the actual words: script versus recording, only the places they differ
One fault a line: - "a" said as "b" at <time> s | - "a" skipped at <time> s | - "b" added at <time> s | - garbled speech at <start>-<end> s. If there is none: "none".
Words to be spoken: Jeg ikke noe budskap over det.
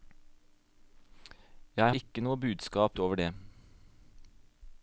none